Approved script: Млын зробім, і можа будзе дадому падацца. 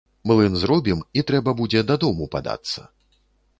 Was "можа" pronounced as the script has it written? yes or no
no